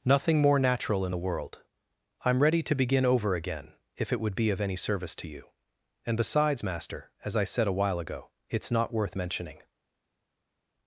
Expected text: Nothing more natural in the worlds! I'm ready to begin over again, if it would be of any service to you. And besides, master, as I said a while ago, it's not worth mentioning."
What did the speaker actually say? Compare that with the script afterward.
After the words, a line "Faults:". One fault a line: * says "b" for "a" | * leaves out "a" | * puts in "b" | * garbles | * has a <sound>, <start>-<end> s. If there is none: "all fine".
Nothing more natural in the world! I'm ready to begin over again, if it would be of any service to you. And besides, master, as I said a while ago, it's not worth mentioning."
Faults:
* says "world" for "worlds"